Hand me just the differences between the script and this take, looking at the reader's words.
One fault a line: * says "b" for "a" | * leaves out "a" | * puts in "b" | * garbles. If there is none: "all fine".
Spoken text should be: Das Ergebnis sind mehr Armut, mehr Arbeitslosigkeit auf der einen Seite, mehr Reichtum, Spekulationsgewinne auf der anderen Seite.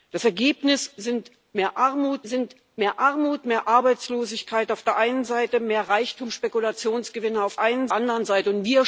* puts in "sind"
* puts in "Armut mehr"
* says "einen" for "der"